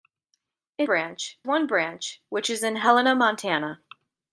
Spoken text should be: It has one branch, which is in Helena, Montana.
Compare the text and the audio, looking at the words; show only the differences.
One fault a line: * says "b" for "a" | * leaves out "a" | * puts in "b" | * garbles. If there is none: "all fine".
* says "branch" for "has"